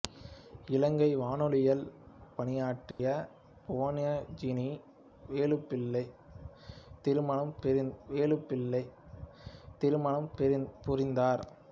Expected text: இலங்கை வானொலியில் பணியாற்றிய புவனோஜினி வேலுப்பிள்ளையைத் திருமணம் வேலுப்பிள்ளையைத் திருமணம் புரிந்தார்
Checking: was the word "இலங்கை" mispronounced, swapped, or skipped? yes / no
no